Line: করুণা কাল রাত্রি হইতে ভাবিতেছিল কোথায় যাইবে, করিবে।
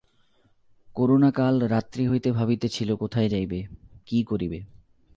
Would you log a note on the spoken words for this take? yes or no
yes